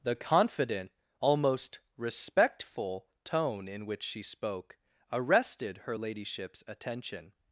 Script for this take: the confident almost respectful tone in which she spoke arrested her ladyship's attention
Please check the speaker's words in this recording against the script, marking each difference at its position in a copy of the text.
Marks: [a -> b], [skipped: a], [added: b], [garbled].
the confident almost respectful tone in which she spoke arrested her ladyship's attention